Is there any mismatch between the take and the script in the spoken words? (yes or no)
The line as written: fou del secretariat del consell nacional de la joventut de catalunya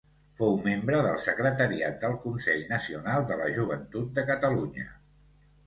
yes